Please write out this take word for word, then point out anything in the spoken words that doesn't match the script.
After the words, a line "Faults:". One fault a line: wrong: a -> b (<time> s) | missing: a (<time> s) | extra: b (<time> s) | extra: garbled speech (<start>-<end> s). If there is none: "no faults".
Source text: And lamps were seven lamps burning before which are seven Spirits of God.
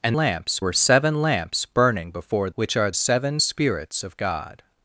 And lamps were seven lamps burning before which are seven Spirits of God.
Faults:
no faults